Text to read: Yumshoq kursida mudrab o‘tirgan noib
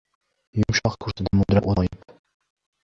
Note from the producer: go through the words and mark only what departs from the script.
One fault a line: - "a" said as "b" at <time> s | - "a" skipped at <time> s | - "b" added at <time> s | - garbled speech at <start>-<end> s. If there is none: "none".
- "o‘tirgan" skipped at 1.7 s